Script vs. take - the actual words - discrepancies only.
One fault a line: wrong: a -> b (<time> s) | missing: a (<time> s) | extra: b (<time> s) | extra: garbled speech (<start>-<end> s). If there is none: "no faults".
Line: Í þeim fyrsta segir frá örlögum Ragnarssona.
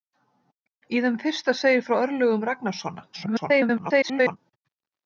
extra: garbled speech (3.1-4.4 s)